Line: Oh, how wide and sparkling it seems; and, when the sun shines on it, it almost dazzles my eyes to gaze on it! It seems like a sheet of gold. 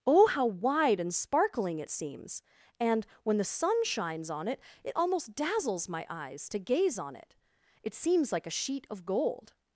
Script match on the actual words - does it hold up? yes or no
yes